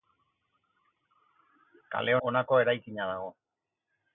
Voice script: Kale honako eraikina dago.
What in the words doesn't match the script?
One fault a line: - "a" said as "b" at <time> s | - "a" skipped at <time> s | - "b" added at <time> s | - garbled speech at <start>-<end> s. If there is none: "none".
none